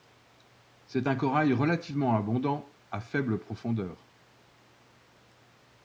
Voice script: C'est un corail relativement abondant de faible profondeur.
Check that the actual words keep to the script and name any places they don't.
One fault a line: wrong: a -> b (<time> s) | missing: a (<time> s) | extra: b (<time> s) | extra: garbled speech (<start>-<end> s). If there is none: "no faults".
wrong: de -> à (2.9 s)